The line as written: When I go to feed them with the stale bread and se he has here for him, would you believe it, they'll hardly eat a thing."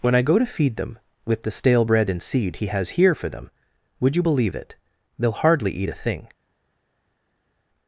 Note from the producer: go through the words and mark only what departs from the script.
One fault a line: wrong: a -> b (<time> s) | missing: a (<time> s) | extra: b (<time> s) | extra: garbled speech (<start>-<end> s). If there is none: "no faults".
wrong: se -> seed (2.2 s)
wrong: him -> them (3.3 s)